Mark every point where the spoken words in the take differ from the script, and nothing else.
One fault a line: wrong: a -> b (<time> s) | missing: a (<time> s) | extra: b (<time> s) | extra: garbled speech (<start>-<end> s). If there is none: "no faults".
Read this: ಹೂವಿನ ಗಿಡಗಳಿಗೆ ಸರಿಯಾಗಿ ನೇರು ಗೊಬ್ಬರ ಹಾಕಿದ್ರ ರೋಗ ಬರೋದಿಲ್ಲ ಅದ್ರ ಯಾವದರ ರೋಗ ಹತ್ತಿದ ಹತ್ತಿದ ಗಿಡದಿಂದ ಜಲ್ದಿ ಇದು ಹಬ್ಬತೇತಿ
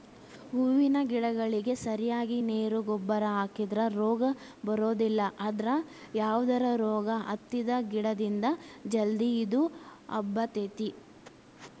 missing: ಹತ್ತಿದ (7.7 s)